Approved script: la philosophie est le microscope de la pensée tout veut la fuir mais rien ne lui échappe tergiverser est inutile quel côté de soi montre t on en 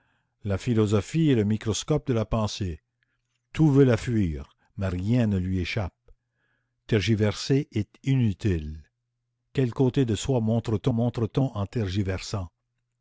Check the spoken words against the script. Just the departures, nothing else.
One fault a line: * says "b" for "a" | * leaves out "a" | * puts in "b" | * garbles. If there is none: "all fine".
* puts in "montre t"